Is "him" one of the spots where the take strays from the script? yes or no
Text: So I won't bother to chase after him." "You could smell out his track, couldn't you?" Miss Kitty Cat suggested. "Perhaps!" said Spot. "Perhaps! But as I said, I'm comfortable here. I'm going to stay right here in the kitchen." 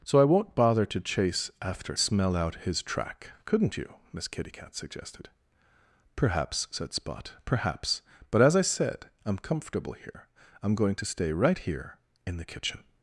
yes